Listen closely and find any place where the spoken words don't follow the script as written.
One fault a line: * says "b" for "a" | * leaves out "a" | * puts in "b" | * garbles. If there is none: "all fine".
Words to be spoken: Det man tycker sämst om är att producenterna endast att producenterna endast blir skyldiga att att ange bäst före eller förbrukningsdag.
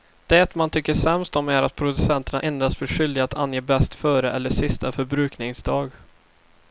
* leaves out "att producenterna endast"
* leaves out "att"
* puts in "sista"